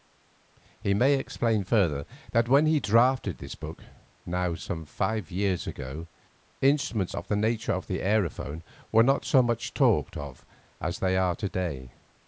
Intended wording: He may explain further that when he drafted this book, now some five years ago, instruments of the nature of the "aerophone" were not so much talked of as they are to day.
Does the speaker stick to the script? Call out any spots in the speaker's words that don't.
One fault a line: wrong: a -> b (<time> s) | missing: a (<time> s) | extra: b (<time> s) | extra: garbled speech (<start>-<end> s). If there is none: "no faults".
no faults